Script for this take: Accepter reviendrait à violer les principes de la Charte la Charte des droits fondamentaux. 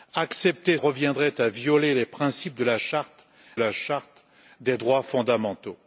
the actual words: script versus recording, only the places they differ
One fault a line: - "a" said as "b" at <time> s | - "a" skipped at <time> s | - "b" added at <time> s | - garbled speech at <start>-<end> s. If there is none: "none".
none